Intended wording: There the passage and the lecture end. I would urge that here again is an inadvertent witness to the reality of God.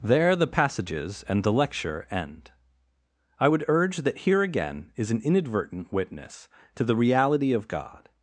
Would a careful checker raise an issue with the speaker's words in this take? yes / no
yes